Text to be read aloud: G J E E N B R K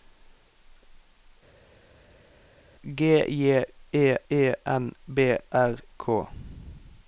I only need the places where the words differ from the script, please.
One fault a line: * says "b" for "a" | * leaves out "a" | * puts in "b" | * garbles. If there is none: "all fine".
all fine